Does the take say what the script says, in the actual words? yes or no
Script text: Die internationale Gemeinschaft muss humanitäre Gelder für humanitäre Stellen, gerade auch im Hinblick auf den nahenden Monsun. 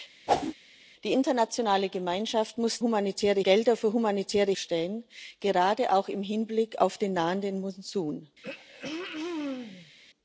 yes